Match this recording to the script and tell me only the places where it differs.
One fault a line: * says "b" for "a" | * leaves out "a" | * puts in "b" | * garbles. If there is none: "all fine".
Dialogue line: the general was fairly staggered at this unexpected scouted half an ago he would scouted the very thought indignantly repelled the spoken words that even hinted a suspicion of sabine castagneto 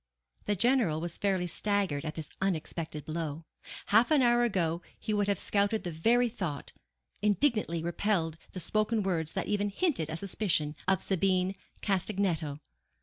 * says "blow" for "scouted"
* puts in "hour"
* puts in "have"